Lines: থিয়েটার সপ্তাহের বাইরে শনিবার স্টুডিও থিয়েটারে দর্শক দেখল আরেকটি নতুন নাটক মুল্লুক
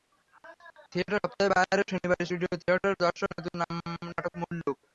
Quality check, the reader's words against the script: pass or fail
fail